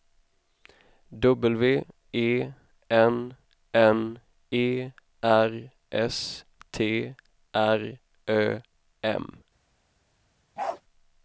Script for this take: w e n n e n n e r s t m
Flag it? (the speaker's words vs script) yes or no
yes